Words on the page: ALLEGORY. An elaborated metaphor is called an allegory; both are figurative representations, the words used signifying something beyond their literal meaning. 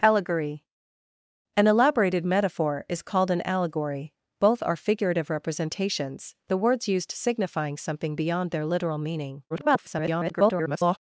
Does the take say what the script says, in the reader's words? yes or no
no